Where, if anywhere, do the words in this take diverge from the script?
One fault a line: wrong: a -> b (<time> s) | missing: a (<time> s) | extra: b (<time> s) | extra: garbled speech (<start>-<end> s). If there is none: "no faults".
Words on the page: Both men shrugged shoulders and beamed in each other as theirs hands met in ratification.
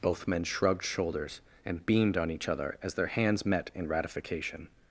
wrong: in -> on (2.2 s)
wrong: theirs -> their (3.0 s)